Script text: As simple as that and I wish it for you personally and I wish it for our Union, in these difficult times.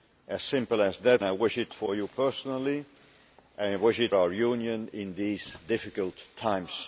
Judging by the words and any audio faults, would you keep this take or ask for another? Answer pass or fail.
fail